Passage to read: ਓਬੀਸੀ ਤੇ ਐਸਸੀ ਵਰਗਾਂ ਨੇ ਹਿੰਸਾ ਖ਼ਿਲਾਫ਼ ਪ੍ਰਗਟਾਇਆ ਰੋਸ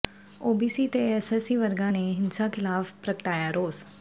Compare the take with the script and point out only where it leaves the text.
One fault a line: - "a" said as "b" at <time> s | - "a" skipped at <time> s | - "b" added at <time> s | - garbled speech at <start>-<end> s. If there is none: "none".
none